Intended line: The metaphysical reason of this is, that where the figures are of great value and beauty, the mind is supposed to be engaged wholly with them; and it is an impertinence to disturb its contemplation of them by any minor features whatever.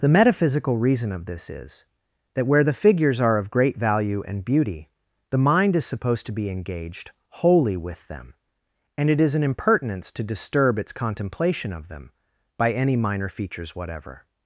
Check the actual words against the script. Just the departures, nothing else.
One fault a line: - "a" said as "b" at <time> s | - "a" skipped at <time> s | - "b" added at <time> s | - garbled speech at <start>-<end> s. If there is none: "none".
none